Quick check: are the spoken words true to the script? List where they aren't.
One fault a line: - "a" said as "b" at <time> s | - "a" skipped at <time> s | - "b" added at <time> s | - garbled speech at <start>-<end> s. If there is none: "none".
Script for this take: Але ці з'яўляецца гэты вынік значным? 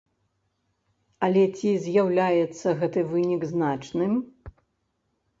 none